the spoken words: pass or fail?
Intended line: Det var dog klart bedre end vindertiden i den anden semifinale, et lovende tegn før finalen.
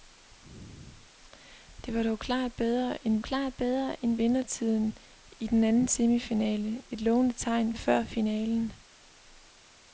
fail